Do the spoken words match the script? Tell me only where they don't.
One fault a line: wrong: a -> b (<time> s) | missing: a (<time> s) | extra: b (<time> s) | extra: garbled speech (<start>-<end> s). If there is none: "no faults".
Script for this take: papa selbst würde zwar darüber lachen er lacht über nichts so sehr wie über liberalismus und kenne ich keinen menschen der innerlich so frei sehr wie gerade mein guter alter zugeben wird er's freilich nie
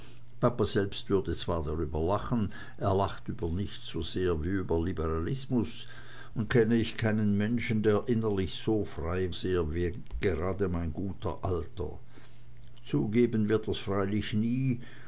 no faults